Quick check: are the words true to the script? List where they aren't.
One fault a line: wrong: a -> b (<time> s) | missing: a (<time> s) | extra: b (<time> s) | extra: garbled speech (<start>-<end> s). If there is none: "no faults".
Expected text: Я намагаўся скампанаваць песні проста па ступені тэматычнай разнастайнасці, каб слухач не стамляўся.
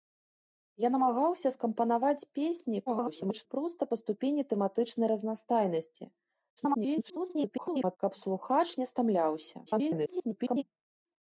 extra: garbled speech (2.9-3.5 s)
extra: garbled speech (6.6-8.0 s)
extra: garbled speech (9.7-10.6 s)